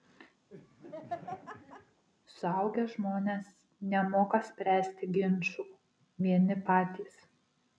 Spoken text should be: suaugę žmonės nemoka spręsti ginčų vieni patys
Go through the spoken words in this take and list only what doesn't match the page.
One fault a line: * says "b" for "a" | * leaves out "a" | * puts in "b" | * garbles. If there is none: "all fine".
all fine